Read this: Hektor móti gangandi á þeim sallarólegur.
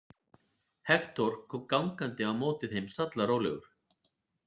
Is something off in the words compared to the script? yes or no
yes